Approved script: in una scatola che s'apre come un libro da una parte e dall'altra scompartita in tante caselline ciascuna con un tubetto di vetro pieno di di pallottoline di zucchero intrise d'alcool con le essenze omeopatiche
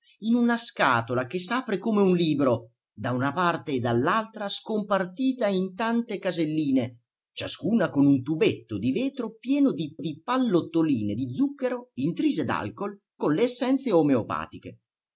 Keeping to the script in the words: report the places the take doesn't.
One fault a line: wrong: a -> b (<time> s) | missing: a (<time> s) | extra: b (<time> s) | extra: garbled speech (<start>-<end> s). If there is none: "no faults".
no faults